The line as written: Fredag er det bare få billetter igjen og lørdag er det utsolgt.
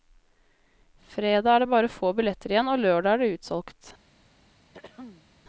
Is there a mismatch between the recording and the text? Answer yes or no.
no